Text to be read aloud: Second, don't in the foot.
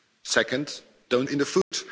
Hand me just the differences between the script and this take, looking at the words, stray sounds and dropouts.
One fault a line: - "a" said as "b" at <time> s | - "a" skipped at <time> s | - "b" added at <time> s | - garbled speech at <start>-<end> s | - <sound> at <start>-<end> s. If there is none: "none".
- dropout at 1.6-1.7 s